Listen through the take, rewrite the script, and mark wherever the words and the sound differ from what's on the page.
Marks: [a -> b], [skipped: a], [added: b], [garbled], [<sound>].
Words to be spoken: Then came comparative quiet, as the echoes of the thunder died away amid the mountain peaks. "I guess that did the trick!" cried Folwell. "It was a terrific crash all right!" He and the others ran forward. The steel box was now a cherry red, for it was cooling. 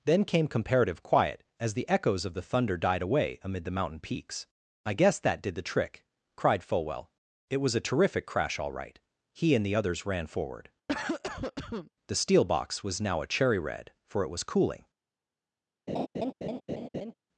Then came comparative quiet, as the echoes of the thunder died away amid the mountain peaks. "I guess that did the trick!" cried Folwell. "It was a terrific crash all right!" He and the others ran forward. [cough] The steel box was now a cherry red, for it was cooling. [laugh]